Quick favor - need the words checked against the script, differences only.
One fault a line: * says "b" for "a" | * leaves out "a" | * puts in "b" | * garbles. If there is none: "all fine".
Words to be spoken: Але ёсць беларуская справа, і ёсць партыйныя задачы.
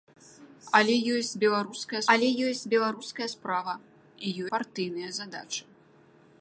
* puts in "але ёсць беларуская"
* leaves out "ёсць"